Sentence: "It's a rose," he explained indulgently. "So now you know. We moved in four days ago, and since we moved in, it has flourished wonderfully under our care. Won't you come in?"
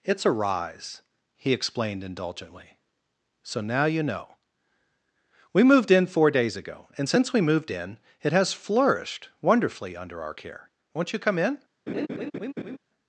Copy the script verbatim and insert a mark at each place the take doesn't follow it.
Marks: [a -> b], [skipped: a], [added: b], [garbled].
"It's a [rose," -> rise] he explained indulgently. "So now you know. We moved in four days ago, and since we moved in, it has flourished wonderfully under our care. Won't you come in?"